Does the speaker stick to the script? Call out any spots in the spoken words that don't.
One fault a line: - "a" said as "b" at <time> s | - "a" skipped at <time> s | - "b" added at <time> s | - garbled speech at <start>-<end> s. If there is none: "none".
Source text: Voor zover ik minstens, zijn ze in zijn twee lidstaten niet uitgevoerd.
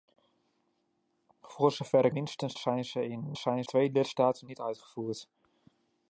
none